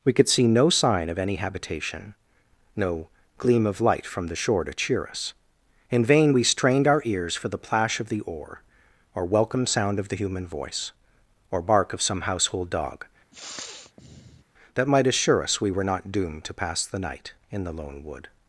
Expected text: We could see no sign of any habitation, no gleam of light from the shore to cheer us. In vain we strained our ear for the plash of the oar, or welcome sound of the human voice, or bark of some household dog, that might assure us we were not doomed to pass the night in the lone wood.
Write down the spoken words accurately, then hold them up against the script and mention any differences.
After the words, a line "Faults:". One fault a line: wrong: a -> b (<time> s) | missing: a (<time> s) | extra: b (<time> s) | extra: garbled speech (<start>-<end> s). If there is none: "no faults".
We could see no sign of any habitation, no gleam of light from the shore to cheer us. In vain we strained our ears for the plash of the oar, or welcome sound of the human voice, or bark of some household dog, that might assure us we were not doomed to pass the night in the lone wood.
Faults:
wrong: ear -> ears (7.0 s)